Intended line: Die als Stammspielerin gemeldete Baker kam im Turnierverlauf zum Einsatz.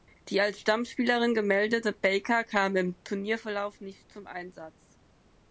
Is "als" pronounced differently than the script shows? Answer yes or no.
no